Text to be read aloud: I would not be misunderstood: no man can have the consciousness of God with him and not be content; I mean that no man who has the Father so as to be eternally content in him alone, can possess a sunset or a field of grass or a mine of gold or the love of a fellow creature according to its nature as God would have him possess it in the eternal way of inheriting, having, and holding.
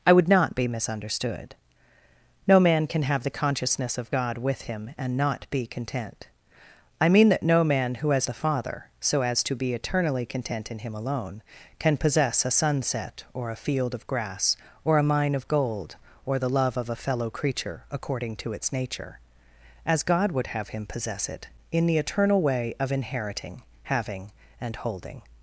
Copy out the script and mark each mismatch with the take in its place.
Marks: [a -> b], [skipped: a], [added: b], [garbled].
I would not be misunderstood: no man can have the consciousness of God with him and not be content; I mean that no man who has the Father so as to be eternally content in him alone, can possess a sunset or a field of grass or a mine of gold or the love of a fellow creature according to its nature as God would have him possess it in the eternal way of inheriting, having, and holding.